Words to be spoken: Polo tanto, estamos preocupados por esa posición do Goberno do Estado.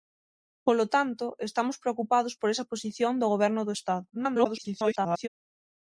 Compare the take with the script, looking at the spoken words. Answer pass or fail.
fail